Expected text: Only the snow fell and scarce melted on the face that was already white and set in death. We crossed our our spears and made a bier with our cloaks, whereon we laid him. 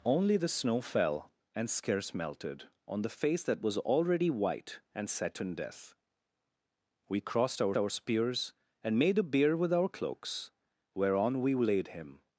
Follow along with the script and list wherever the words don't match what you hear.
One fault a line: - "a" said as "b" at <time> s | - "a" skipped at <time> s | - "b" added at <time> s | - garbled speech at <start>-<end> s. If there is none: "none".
none